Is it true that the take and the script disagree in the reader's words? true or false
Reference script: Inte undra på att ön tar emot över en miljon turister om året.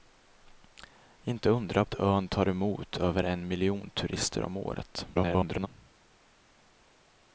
true